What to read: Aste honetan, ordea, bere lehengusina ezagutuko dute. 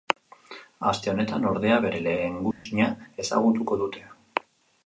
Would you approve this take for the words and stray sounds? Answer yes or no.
no